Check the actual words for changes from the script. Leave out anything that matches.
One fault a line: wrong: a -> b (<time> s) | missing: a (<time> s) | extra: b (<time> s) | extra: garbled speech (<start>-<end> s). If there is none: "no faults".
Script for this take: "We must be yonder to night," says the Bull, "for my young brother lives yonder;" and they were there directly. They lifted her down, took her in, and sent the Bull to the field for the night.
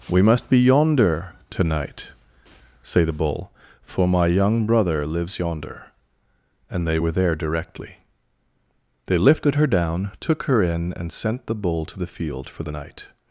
wrong: says -> say (2.8 s)